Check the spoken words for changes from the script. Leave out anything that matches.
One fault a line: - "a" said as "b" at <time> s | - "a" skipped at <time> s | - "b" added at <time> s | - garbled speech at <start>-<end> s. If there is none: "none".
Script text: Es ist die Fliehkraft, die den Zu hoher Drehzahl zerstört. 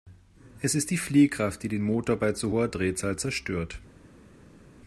- "Motor bei" added at 1.8 s